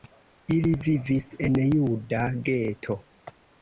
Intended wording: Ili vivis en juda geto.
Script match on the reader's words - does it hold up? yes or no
yes